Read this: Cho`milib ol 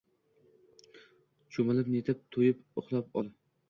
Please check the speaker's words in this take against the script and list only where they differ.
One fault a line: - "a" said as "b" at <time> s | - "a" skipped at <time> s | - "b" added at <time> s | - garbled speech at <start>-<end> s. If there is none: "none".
- "netib to`yib uxlab" added at 2.0 s